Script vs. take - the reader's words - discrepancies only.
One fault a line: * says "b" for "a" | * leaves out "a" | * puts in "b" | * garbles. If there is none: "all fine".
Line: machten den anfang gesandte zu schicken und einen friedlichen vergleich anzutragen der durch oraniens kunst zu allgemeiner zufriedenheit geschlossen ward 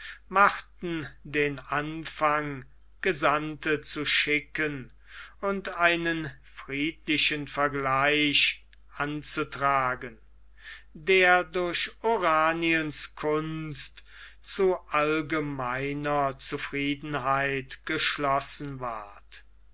all fine